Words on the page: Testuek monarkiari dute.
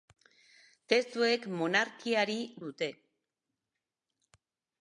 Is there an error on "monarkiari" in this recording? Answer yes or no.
no